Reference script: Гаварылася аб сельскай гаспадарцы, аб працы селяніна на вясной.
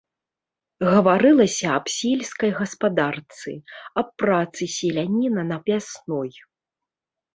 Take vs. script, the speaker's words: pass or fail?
pass